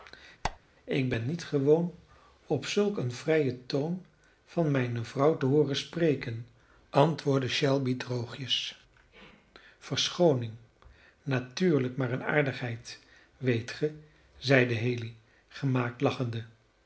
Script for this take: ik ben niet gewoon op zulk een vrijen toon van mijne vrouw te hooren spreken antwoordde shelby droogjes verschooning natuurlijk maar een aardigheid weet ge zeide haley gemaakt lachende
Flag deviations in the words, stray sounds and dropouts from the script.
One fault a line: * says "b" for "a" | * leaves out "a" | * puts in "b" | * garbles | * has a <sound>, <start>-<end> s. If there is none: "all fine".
* has a squeak, 0.4-0.6 s